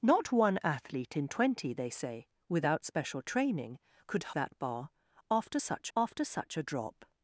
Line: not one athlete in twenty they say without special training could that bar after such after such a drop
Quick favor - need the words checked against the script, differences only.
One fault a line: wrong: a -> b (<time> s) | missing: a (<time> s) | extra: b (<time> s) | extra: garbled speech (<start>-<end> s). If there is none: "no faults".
no faults